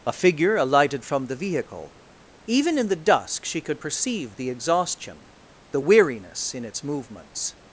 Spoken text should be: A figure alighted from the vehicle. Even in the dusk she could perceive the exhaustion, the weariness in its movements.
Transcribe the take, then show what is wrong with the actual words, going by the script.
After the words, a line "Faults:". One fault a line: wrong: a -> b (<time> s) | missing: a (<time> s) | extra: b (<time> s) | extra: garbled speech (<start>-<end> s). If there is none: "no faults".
A figure alighted from the vehicle. Even in the dusk she could perceive the exhaustion, the weariness in its movements.
Faults:
no faults